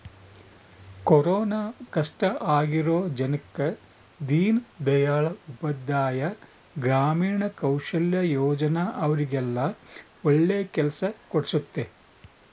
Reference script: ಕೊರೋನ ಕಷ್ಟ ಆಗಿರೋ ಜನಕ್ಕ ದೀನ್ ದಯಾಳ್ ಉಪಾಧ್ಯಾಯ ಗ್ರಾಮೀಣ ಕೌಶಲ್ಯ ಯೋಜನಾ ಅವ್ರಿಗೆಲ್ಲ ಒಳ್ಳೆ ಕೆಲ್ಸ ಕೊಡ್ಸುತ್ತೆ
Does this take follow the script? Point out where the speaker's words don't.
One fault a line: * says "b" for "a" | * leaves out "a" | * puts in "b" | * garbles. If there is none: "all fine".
all fine